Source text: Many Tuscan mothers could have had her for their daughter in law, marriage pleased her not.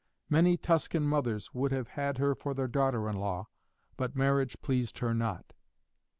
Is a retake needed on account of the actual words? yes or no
yes